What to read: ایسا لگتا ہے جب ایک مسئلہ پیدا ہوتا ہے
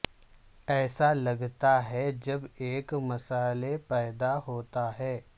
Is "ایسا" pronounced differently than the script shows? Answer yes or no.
no